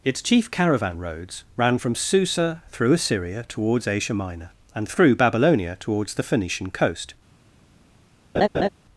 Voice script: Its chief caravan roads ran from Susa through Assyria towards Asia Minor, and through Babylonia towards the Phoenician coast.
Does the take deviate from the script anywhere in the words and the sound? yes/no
yes